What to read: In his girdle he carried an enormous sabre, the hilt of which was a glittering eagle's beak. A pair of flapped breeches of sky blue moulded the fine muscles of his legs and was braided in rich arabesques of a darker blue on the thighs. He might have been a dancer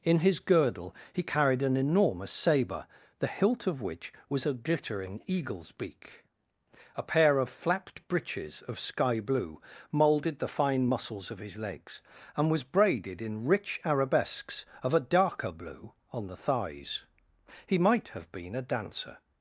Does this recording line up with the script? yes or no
yes